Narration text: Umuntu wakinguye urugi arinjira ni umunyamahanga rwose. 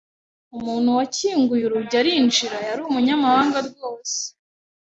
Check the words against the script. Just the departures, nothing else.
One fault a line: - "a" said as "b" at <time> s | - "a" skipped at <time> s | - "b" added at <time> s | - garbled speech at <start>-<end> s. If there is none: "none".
- "ni" said as "yari" at 2.7 s